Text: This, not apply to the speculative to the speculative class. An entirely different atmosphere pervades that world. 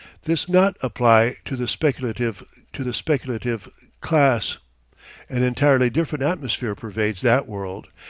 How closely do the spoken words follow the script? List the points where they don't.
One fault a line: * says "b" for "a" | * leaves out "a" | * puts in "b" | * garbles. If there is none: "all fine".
all fine